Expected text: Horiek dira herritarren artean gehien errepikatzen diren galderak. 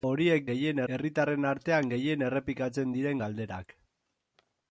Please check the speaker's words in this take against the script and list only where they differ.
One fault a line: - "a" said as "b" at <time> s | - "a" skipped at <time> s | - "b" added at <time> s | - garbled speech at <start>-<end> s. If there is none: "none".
- "dira" said as "gehien" at 0.5 s